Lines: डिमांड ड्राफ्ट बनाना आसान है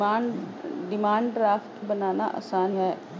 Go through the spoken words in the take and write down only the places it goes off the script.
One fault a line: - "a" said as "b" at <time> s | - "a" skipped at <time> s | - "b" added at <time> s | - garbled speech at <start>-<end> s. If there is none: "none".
none